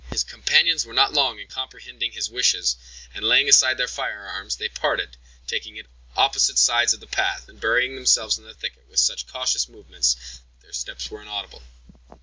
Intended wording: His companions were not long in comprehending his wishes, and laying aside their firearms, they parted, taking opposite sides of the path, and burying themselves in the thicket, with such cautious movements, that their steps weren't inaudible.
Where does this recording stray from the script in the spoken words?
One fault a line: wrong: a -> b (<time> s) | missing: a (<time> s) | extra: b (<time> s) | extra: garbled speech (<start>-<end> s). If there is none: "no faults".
wrong: weren't -> were (11.1 s)